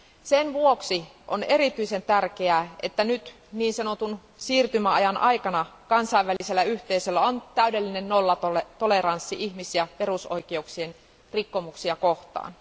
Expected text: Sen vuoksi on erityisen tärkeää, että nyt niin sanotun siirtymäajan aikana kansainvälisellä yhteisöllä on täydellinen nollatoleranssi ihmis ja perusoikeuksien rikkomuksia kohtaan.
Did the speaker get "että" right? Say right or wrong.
right